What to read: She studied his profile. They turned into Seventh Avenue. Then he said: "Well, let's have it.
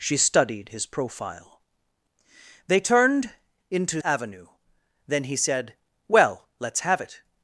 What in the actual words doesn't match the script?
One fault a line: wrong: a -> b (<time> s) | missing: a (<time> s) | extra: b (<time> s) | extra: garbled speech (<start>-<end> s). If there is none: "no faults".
missing: Seventh (4.0 s)